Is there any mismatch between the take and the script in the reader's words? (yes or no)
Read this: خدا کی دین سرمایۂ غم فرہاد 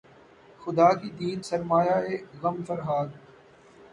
no